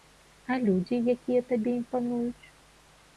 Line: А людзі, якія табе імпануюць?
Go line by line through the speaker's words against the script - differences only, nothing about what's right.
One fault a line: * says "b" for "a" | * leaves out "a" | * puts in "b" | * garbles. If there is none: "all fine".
all fine